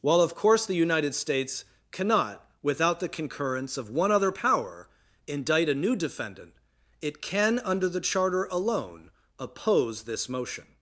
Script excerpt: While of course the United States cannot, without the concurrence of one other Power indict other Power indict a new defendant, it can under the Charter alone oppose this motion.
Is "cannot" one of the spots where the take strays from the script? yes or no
no